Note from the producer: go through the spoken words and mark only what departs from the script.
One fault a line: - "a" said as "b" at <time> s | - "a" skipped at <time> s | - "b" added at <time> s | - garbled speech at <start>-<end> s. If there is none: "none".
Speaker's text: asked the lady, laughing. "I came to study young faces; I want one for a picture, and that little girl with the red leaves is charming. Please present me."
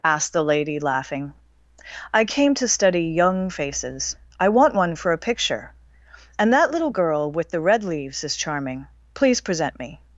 none